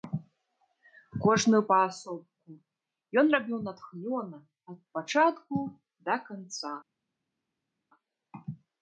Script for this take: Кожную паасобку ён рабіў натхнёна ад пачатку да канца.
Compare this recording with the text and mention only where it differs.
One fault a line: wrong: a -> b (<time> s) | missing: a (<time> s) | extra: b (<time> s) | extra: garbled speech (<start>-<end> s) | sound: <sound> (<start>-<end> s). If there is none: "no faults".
no faults